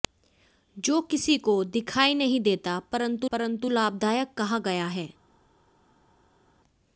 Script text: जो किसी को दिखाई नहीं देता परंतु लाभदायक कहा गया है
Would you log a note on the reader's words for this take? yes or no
yes